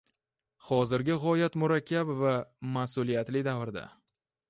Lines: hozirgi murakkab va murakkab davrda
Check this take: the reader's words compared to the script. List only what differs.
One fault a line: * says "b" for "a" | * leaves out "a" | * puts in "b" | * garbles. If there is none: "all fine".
* puts in "g‘oyat"
* says "mas'uliyatli" for "murakkab"